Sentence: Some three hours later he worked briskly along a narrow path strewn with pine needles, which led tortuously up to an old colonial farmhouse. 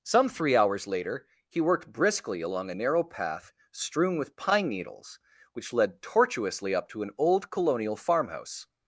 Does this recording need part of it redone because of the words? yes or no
no